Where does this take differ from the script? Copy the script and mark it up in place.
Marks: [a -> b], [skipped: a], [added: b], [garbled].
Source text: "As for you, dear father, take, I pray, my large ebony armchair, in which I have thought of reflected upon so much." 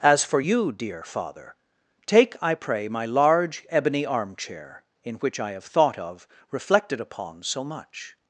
"As for you, dear father, take, I pray, my large ebony armchair, in which I have thought of reflected upon so much."